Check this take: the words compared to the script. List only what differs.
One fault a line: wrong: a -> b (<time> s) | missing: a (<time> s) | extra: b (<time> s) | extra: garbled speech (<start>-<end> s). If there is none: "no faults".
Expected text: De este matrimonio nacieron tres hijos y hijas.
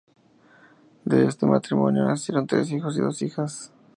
extra: dos (3.0 s)